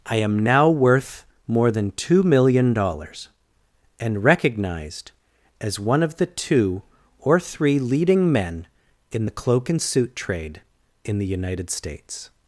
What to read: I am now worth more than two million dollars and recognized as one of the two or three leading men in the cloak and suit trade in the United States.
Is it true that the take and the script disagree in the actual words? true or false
false